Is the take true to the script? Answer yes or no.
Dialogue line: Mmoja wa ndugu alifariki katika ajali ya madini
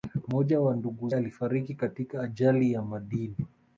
yes